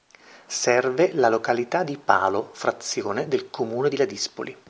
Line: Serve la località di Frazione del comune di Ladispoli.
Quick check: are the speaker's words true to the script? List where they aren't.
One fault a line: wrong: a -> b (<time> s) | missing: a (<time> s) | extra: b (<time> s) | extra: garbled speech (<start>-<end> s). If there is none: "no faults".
extra: Palo (1.9 s)